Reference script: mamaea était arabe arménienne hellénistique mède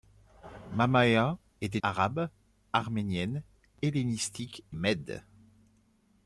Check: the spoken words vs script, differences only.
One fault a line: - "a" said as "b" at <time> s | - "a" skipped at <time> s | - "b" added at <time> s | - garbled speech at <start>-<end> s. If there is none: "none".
none